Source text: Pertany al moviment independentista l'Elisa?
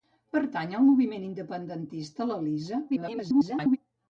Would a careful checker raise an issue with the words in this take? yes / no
yes